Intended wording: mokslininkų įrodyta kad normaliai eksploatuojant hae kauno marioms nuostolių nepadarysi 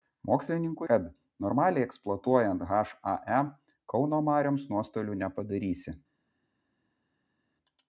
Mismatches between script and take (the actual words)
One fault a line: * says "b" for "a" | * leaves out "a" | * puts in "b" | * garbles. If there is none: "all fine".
* leaves out "įrodyta"